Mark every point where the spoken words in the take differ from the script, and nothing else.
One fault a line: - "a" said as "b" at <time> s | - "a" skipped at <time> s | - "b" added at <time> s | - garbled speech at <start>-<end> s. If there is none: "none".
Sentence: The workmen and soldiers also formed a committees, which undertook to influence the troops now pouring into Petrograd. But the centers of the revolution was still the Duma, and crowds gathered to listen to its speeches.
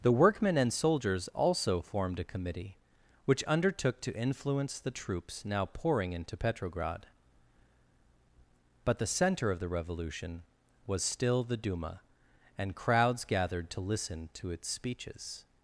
- "committees" said as "committee" at 2.2 s
- "centers" said as "center" at 9.1 s